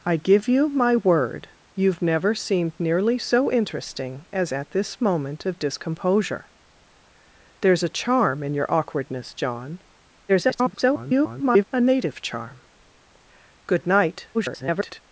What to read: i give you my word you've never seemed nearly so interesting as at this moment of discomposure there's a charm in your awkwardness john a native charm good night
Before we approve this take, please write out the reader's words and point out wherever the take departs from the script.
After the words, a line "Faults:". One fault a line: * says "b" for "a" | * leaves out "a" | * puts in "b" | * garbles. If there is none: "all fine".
i give you my word you've never seemed nearly so interesting as at this moment of discomposure there's a charm in your awkwardness john [garbled] a native charm good night [garbled]
Faults:
* garbles
* garbles